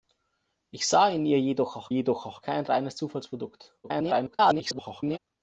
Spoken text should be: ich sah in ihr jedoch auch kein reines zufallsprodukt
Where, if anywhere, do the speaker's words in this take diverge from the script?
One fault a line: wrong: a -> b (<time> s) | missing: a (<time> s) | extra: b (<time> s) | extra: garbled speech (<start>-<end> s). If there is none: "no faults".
extra: jedoch auch (1.9 s)
extra: garbled speech (3.8-5.2 s)